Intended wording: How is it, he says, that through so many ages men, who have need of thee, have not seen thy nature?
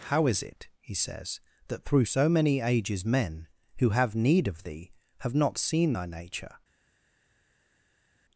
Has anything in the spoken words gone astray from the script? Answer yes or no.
no